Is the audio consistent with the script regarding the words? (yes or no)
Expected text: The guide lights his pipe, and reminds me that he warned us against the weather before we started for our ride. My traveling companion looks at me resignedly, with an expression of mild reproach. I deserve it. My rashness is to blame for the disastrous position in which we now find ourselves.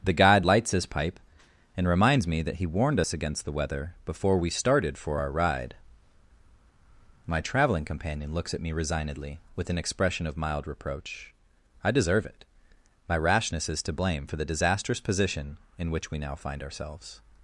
yes